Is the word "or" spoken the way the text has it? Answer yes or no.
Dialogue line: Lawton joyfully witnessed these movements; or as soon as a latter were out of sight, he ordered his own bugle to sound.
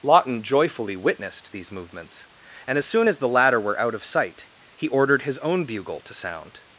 no